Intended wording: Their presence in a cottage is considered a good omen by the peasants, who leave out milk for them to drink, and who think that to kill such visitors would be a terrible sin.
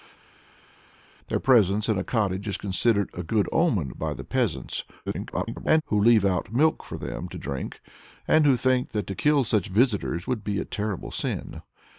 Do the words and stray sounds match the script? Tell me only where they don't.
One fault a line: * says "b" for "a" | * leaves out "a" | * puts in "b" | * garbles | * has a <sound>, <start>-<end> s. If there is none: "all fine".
* garbles